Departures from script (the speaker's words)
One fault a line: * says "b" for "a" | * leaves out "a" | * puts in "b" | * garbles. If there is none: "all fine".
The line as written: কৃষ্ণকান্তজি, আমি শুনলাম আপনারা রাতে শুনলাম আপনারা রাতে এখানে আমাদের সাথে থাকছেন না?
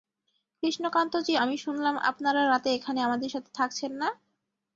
* leaves out "শুনলাম আপনারা রাতে"